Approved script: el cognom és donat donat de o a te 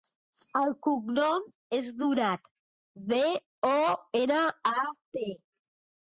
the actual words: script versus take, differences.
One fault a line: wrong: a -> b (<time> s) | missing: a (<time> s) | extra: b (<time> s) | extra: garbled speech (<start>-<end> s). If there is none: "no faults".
missing: donat (2.5 s)
extra: ena (4.2 s)